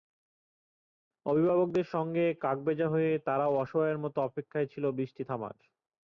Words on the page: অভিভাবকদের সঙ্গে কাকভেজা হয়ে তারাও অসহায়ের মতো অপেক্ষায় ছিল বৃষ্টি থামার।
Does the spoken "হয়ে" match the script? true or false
true